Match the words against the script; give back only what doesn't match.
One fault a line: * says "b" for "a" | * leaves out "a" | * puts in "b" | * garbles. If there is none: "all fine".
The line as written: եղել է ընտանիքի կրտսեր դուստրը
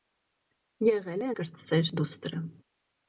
* leaves out "ընտանիքի"